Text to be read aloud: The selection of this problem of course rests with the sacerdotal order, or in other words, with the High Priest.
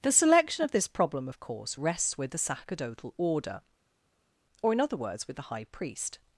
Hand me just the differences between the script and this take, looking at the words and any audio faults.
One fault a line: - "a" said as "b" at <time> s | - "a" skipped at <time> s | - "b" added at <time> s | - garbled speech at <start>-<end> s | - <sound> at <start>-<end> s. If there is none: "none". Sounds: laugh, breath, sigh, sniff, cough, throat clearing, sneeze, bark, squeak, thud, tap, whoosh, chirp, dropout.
none